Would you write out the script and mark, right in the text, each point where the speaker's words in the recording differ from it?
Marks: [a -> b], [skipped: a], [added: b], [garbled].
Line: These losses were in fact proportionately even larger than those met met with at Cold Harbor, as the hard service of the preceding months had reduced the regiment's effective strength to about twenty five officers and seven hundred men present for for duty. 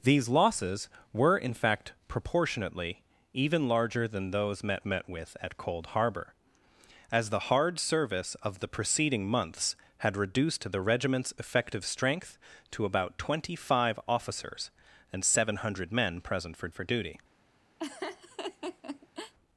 These losses were in fact proportionately even larger than those met met with at Cold Harbor, as the hard service of the preceding months had reduced the regiment's effective strength to about twenty five officers and seven hundred men present for for duty.